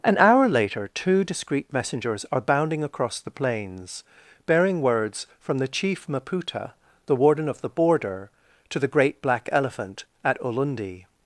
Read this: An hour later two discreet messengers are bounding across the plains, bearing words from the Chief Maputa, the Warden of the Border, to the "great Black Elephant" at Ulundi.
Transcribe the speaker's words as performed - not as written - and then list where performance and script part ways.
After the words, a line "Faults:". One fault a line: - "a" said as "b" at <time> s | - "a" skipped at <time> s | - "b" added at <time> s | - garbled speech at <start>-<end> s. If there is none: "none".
An hour later two discreet messengers are bounding across the plains, bearing words from the Chief Maputa, the Warden of the Border, to the "great Black Elephant" at Ulundi.
Faults:
none